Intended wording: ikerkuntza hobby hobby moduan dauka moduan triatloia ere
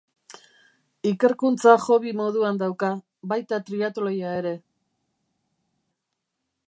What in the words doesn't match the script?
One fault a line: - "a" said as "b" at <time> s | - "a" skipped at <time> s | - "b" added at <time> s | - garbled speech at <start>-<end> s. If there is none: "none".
- "hobby" skipped at 2.1 s
- "moduan" said as "baita" at 3.4 s